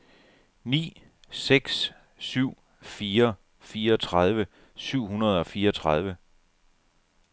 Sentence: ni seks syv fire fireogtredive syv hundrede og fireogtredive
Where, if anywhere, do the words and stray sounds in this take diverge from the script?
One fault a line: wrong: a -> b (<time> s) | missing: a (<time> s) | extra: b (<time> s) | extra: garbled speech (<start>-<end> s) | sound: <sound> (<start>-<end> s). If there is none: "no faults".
no faults